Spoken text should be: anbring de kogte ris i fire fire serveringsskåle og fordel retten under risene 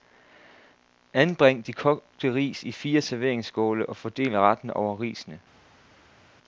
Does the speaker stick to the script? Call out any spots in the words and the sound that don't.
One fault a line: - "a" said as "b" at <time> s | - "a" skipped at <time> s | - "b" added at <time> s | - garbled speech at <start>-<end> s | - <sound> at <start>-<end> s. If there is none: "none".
- "fire" skipped at 3.0 s
- "under" said as "over" at 4.7 s